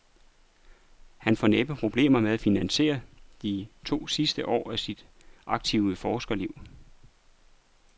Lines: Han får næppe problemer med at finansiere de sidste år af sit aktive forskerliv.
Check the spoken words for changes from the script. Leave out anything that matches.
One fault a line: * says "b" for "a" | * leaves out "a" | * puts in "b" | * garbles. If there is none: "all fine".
* puts in "to"